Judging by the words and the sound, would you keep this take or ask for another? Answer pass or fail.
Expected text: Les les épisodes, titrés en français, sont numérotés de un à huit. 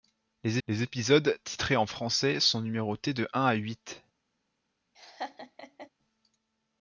fail